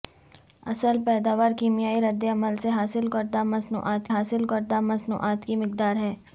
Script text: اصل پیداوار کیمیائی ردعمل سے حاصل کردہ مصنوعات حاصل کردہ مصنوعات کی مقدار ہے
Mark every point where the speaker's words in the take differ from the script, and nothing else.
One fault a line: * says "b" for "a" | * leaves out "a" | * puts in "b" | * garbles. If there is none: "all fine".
all fine